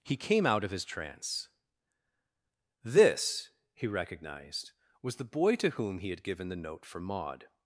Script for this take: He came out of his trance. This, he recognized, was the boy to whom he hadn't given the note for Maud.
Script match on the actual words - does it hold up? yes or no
no